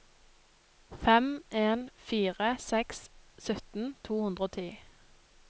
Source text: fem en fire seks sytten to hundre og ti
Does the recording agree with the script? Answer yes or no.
yes